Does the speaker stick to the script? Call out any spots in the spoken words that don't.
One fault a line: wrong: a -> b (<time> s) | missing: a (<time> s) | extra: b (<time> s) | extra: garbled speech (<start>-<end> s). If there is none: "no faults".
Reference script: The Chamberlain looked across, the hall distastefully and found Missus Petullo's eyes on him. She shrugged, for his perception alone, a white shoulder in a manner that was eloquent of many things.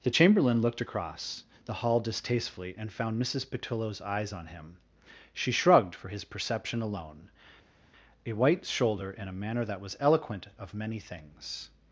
no faults